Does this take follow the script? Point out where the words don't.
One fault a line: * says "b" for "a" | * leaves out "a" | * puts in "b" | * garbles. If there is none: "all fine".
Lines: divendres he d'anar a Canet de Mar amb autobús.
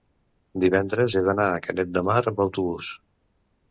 all fine